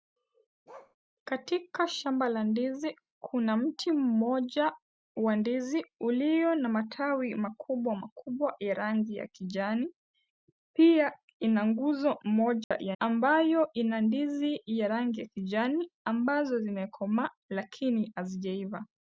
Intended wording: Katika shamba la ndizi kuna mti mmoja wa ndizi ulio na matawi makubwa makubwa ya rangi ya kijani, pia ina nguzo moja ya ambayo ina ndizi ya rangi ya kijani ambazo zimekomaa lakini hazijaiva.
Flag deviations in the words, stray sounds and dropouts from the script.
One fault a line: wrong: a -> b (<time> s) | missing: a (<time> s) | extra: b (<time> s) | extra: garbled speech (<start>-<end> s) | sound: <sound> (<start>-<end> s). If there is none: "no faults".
sound: bark (0.7-1.0 s)
sound: dropout (12.6-12.7 s)